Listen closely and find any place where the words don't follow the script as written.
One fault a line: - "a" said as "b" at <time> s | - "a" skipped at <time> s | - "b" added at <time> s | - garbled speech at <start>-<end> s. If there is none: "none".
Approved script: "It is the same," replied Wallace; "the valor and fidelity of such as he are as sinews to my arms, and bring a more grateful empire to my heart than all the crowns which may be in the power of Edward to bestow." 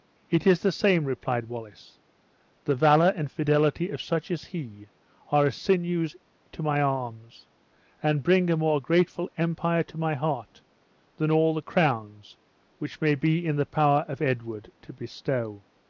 none